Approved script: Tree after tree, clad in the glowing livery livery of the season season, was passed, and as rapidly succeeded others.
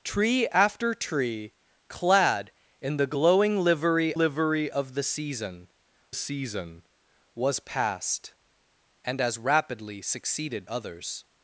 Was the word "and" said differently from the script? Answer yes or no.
no